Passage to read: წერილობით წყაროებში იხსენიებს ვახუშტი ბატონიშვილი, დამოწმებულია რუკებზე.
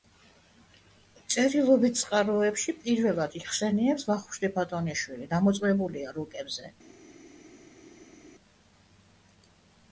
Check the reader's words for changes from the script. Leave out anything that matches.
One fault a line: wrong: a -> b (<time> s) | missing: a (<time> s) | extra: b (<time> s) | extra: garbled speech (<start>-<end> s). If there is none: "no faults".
extra: პირველად (2.9 s)